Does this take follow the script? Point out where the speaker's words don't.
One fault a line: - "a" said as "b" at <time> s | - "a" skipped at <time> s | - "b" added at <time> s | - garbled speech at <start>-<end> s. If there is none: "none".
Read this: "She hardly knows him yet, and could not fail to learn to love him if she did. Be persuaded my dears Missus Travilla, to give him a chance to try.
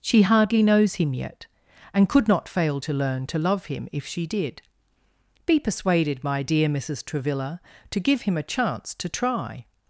- "dears" said as "dear" at 6.4 s